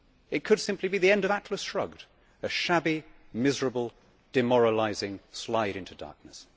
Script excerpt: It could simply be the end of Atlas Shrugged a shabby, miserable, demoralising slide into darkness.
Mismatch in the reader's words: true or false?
false